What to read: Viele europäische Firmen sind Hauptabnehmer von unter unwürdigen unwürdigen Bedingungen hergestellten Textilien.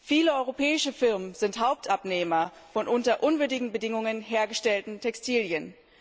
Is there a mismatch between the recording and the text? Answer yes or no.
yes